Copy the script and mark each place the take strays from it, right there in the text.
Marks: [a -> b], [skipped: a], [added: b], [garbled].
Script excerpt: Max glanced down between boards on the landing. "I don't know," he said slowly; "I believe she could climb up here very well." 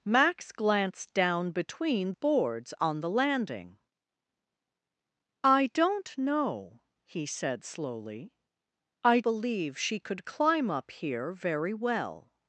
Max glanced down between boards on the landing. "I don't know," he said slowly; "I believe she could climb up here very well."